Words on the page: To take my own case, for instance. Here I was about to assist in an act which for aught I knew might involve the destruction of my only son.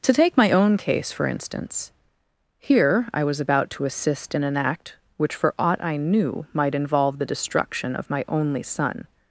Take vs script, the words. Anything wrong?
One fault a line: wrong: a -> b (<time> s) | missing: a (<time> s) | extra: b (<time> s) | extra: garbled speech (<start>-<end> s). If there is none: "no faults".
no faults